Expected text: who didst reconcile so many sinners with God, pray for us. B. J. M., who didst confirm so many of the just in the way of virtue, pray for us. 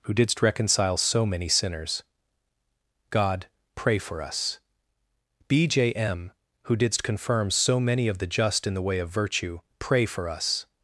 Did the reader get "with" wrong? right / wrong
wrong